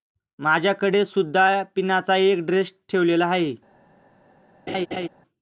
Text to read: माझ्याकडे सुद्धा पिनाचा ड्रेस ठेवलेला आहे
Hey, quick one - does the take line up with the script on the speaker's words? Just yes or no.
no